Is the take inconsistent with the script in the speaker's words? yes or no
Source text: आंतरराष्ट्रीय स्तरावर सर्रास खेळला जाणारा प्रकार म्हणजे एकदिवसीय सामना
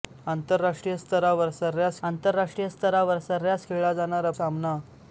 yes